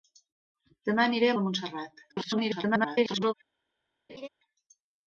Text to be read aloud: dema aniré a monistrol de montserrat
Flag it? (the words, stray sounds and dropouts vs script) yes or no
yes